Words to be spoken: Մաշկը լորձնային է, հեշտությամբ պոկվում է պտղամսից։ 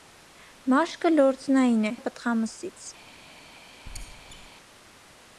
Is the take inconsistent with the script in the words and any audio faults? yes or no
yes